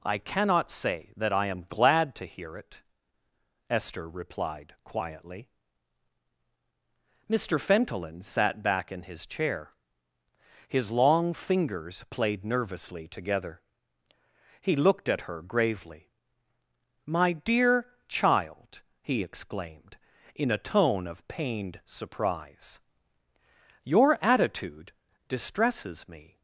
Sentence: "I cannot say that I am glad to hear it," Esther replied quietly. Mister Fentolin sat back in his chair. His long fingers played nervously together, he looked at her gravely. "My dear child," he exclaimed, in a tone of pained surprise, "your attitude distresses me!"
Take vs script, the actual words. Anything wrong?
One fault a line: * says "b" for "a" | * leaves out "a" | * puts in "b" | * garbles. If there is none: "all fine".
all fine